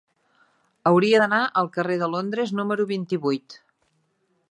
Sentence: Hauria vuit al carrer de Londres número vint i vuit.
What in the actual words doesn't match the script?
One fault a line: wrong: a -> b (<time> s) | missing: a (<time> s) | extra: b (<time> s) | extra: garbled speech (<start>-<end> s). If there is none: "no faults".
wrong: vuit -> d'anar (1.2 s)